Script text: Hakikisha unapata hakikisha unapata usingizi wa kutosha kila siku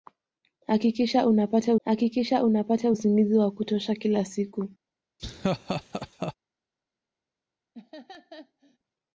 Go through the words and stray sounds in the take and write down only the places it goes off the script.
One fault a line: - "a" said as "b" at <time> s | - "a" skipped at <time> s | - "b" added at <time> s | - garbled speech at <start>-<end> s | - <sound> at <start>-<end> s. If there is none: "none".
- laugh at 5.2-6.3 s
- laugh at 7.7-8.8 s